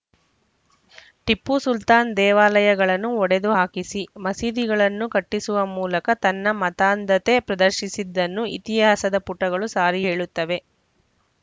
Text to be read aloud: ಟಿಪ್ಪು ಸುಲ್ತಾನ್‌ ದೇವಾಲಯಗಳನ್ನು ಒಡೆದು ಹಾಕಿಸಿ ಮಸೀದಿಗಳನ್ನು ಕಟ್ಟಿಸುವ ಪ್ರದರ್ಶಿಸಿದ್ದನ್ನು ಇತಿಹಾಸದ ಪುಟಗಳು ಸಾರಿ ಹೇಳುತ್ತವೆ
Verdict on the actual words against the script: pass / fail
fail